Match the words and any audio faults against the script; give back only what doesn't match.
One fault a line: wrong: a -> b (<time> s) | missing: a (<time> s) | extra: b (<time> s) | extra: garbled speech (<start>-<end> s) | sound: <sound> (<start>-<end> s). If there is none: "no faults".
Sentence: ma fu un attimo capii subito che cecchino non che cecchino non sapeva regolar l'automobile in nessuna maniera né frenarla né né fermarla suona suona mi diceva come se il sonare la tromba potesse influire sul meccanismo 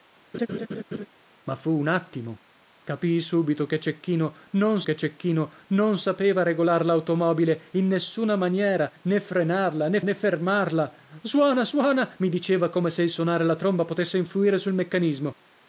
sound: laugh (0.3-1.1 s)